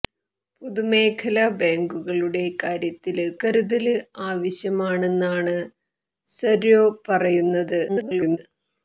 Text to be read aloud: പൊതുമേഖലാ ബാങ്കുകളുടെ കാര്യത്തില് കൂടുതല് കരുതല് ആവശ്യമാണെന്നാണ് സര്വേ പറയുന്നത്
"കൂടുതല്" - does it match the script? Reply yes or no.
no